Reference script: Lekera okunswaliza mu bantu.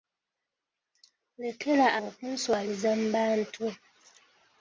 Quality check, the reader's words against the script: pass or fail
pass